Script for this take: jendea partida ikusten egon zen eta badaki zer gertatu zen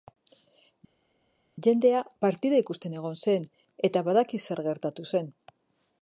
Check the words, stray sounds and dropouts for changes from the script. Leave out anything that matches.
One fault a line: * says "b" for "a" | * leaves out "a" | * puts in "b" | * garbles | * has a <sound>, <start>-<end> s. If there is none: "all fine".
all fine